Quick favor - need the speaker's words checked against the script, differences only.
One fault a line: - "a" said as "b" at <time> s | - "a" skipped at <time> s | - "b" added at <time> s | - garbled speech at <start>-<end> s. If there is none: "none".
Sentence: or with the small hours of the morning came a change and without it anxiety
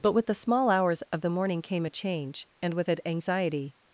- "or" said as "but" at 0.0 s
- "without" said as "with" at 2.7 s